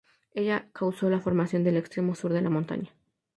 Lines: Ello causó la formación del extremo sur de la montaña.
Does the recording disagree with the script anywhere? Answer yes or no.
no